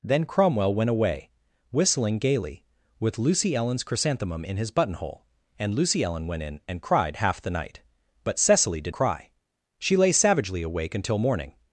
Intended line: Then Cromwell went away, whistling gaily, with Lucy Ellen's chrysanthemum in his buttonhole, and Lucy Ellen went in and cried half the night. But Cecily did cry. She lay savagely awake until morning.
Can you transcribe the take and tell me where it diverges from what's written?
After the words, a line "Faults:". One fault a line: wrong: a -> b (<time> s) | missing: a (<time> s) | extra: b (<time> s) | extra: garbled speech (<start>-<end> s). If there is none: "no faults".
Then Cromwell went away, whistling gaily, with Lucy Ellen's chrysanthemum in his buttonhole, and Lucy Ellen went in and cried half the night. But Cecily did cry. She lay savagely awake until morning.
Faults:
no faults